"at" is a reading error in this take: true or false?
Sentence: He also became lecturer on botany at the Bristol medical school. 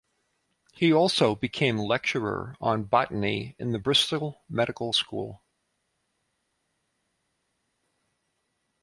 true